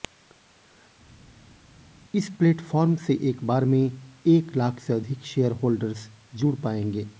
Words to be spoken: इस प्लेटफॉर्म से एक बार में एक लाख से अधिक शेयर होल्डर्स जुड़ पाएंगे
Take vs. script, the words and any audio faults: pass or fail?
pass